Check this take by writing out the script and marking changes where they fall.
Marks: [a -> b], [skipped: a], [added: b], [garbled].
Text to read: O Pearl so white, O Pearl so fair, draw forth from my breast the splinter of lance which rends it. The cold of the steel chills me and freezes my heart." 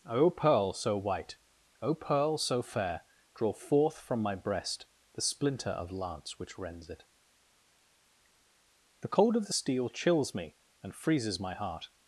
O Pearl so white, O Pearl so fair, draw forth from my breast the splinter of lance which rends it. The cold of the steel chills me and freezes my heart."